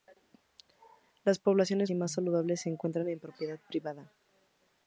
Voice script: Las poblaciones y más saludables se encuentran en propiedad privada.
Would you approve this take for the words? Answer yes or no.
yes